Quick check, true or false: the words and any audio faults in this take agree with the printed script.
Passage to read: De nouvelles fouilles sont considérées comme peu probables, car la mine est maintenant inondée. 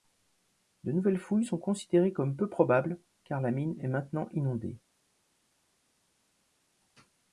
true